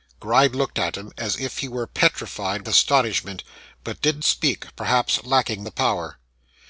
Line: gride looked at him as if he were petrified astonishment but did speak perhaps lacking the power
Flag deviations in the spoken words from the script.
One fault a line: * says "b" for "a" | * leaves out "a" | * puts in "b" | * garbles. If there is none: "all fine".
all fine